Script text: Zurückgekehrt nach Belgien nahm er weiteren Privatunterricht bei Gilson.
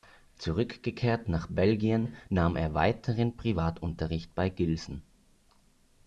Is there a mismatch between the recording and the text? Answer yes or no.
no